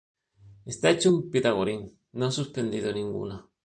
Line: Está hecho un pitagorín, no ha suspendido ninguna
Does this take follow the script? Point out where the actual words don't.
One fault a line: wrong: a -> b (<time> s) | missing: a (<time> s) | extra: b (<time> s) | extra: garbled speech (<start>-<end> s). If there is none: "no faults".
no faults